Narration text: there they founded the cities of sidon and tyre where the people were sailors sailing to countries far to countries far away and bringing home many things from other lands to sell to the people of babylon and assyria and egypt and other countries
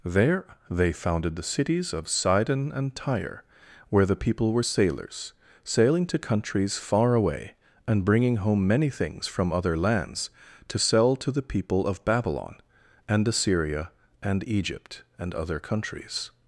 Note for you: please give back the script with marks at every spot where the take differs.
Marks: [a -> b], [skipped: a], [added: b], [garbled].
there they founded the cities of sidon and tyre where the people were sailors sailing to countries far [skipped: to countries far] away and bringing home many things from other lands to sell to the people of babylon and assyria and egypt and other countries